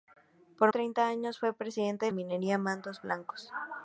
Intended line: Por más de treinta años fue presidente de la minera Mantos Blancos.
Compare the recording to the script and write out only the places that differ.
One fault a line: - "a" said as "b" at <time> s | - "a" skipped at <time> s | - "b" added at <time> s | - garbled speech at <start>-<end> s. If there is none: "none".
- "más de" skipped at 0.7 s
- "la" skipped at 2.1 s